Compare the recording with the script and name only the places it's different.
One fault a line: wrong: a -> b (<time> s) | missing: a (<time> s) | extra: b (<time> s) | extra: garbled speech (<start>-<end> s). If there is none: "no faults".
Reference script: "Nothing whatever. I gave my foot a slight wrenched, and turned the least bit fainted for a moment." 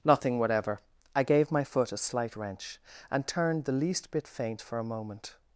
wrong: wrenched -> wrench (2.4 s)
wrong: fainted -> faint (4.3 s)